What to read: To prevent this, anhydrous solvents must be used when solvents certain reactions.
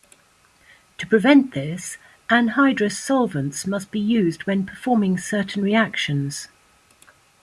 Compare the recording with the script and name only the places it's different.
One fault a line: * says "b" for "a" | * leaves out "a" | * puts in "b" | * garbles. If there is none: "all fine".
* says "performing" for "solvents"